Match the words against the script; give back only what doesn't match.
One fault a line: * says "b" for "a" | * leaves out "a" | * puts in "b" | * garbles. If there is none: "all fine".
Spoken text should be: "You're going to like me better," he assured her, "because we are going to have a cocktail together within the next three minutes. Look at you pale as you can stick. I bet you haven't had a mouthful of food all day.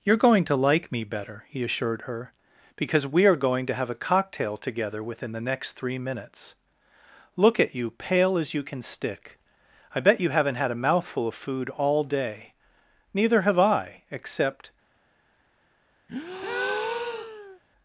* puts in "Neither have I except"